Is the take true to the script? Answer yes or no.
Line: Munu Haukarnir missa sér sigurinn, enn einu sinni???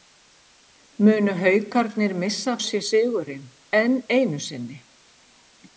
yes